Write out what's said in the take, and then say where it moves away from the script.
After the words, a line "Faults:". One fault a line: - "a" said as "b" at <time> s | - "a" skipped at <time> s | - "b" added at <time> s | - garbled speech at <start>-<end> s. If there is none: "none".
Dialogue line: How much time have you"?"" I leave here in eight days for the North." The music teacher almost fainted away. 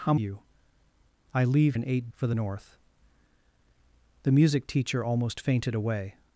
How you"?"" I leave in eight for the North." The music teacher almost fainted away.
Faults:
- "much time have" skipped at 0.1 s
- "here" skipped at 1.8 s
- "days" skipped at 2.1 s